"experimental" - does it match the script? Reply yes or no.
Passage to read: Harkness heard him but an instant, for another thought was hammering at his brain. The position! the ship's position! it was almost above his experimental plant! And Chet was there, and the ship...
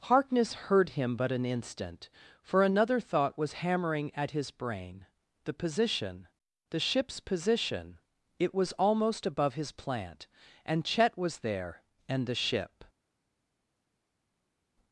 no